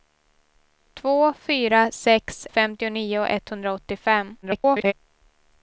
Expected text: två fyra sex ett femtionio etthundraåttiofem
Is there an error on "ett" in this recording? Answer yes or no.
yes